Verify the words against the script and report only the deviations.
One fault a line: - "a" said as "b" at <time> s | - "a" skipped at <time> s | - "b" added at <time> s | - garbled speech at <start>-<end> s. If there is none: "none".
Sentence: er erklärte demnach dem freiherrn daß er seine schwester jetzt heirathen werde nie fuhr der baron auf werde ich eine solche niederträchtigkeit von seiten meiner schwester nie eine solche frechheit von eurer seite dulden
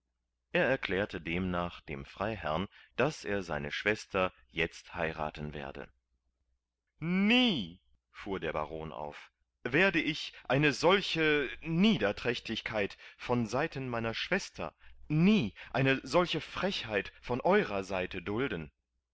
none